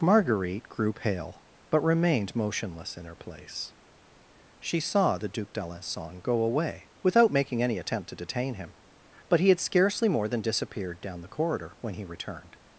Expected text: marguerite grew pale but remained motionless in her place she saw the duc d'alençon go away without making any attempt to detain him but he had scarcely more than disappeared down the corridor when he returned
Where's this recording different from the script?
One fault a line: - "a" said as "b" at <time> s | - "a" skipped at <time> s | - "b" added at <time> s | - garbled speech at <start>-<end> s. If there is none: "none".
none